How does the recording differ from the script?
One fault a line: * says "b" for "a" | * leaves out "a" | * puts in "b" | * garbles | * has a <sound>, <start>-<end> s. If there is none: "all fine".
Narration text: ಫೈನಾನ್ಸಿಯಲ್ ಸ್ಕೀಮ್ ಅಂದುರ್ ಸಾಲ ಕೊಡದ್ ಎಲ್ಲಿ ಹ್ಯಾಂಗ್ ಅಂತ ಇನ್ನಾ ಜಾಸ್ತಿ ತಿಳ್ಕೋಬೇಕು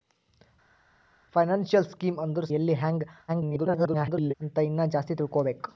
* leaves out "ಸಾಲ ಕೊಡದ್"
* garbles